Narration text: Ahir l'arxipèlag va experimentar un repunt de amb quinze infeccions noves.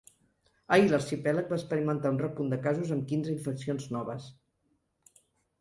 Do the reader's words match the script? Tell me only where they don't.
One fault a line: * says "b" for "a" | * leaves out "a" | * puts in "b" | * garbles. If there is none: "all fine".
* puts in "casos"